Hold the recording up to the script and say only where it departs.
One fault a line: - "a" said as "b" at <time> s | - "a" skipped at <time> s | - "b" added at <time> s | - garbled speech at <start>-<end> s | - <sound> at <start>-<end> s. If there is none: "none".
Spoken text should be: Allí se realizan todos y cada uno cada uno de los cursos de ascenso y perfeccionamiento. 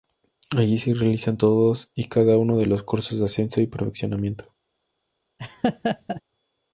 - "cada uno" skipped at 2.6 s
- laugh at 5.4-6.2 s